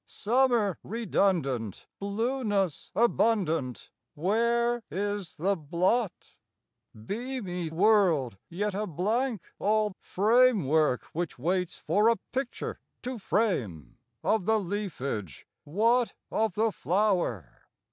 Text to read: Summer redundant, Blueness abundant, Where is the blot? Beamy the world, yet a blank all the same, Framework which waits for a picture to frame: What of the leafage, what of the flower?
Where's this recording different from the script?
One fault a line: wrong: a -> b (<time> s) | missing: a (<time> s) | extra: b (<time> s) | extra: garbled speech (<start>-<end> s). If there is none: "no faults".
missing: the (7.7 s)
missing: the same (9.9 s)
missing: What (14.0 s)